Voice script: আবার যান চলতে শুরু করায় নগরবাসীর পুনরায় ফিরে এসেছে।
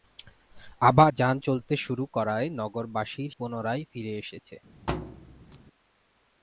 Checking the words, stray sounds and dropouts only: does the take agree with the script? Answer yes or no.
no